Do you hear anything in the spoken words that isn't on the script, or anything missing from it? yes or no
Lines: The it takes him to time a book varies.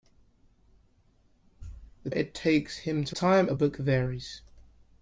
no